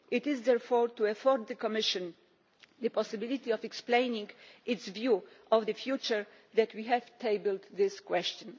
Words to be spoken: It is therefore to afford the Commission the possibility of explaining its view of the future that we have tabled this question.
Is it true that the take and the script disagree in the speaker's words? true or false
false